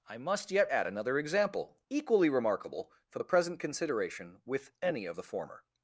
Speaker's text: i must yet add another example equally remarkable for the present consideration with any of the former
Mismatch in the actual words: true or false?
false